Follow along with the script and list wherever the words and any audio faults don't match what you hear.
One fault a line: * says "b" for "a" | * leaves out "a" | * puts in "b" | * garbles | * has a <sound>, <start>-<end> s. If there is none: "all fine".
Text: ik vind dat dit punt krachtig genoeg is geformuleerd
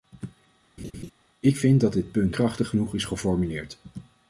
* has a laugh, 0.8-1.1 s